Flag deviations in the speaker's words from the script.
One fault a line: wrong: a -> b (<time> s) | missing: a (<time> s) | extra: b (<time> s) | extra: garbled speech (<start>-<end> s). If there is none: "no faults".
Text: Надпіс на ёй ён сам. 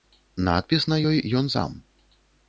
no faults